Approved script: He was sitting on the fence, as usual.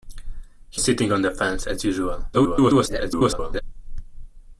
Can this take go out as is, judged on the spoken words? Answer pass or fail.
fail